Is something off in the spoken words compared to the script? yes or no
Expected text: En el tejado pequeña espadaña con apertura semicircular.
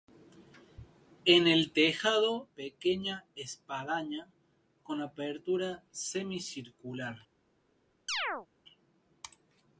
no